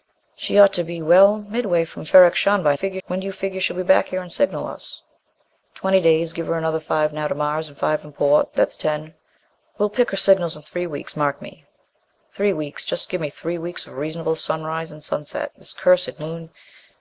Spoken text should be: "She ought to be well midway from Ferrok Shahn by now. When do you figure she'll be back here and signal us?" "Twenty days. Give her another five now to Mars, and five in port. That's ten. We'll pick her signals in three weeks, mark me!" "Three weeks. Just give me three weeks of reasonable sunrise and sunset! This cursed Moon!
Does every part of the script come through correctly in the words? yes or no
no